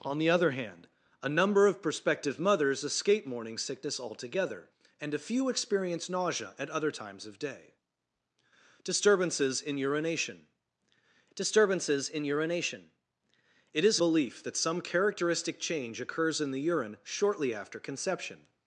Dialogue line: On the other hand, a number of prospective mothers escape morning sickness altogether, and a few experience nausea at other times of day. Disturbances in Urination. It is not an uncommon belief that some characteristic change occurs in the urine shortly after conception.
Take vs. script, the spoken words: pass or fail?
fail